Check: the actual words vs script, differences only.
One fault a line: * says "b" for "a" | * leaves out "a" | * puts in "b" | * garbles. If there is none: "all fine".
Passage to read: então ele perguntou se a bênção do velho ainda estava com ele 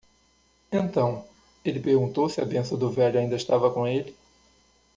all fine